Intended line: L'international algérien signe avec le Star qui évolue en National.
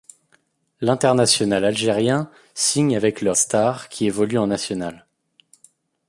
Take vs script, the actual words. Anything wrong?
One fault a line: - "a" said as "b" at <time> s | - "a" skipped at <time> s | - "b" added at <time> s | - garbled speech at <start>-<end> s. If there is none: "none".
none